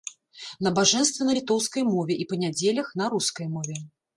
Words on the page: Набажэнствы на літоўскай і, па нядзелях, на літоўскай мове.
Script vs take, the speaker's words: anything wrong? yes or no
yes